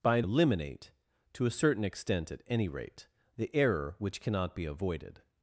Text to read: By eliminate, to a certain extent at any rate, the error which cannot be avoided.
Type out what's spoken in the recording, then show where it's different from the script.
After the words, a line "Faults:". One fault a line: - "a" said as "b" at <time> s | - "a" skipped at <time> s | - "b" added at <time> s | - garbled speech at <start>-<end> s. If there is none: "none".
By eliminate, to a certain extent at any rate, the error which cannot be avoided.
Faults:
none